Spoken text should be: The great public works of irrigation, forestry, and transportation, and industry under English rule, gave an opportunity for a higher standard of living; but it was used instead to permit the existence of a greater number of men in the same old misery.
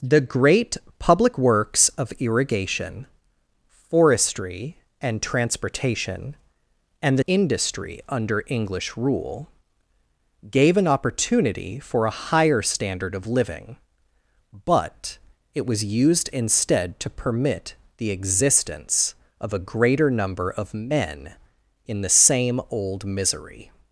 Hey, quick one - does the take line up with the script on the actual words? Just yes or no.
yes